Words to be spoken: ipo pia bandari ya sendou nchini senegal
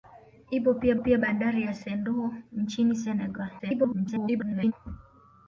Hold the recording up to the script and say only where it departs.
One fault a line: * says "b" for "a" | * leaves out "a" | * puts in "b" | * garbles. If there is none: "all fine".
* puts in "pia"
* garbles